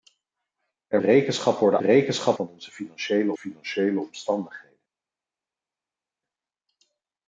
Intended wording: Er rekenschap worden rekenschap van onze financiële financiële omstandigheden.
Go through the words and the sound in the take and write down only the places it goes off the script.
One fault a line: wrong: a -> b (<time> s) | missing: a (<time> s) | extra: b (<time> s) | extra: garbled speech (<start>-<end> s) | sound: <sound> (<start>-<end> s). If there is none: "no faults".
no faults